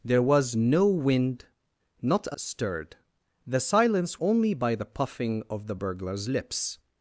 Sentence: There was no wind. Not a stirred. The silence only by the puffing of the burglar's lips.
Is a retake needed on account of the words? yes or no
no